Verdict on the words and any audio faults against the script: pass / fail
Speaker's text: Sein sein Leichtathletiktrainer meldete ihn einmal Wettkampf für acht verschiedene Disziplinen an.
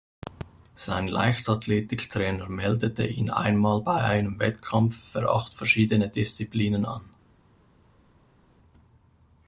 fail